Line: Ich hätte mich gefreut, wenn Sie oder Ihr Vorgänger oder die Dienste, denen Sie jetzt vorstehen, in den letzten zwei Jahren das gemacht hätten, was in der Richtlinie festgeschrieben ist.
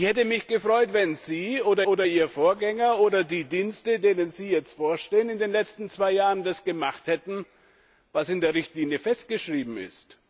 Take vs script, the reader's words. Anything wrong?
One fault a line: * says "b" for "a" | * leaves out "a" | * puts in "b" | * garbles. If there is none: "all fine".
* puts in "oder"